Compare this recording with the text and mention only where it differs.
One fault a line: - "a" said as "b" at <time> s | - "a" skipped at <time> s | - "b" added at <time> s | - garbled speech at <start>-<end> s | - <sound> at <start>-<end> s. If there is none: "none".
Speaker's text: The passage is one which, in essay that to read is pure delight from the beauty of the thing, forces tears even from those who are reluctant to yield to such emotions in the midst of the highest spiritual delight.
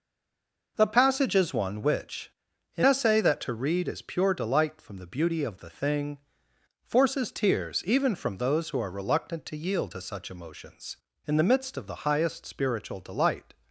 none